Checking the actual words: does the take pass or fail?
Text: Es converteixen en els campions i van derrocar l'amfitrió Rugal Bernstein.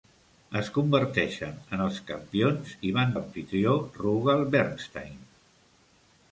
fail